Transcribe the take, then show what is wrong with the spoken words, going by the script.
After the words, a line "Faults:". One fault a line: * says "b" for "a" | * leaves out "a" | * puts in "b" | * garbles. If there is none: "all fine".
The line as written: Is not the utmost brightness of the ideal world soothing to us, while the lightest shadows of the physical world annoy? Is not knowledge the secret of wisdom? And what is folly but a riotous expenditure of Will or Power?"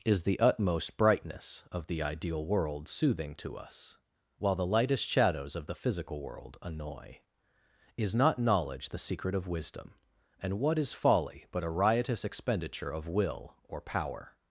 Is the utmost brightness of the ideal world soothing to us, while the lightest shadows of the physical world annoy? Is not knowledge the secret of wisdom? And what is folly but a riotous expenditure of Will or Power?"
Faults:
* leaves out "not"